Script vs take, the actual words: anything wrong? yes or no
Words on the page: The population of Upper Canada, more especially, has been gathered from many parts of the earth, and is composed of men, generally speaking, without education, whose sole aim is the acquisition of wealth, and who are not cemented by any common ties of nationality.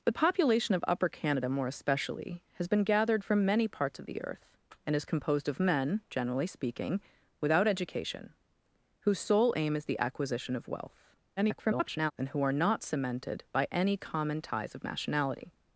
yes